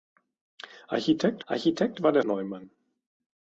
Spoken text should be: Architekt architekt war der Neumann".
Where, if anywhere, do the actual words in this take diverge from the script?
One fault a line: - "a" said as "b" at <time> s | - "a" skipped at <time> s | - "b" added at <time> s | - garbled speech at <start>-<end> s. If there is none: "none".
none